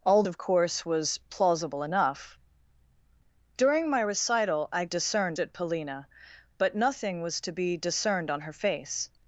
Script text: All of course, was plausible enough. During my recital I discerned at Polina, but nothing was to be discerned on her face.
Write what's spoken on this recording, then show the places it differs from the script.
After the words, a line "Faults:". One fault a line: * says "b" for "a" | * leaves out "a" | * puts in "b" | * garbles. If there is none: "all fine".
All of course, was plausible enough. During my recital I discerned at Polina, but nothing was to be discerned on her face.
Faults:
all fine